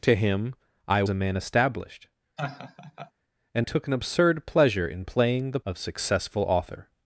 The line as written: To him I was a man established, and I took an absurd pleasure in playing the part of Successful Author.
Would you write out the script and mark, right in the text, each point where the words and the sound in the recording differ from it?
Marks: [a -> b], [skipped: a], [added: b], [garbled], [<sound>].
To him I [skipped: was] a man established, [laugh] and [skipped: I] took an absurd pleasure in playing the [skipped: part] of Successful Author.